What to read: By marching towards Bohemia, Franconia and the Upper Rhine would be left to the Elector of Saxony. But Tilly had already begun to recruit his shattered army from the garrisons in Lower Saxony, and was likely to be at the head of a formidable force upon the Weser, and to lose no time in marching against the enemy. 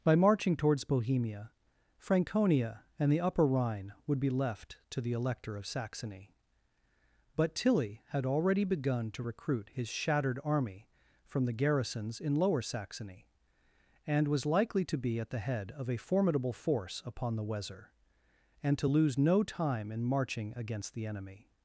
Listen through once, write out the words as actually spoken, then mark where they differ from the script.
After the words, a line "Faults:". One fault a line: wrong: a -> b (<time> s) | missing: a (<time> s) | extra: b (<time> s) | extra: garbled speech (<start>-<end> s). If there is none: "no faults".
By marching towards Bohemia, Franconia and the Upper Rhine would be left to the Elector of Saxony. But Tilly had already begun to recruit his shattered army from the garrisons in Lower Saxony, and was likely to be at the head of a formidable force upon the Weser, and to lose no time in marching against the enemy.
Faults:
no faults